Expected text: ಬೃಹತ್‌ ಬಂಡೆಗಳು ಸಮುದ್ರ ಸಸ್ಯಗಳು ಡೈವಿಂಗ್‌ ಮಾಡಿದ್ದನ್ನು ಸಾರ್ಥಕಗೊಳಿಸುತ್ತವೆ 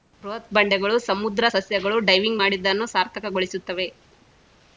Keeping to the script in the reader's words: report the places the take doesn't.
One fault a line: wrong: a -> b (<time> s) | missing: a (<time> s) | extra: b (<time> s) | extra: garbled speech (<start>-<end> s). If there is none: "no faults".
no faults